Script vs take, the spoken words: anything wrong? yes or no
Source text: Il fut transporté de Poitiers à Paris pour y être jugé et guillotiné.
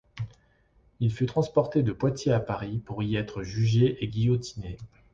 no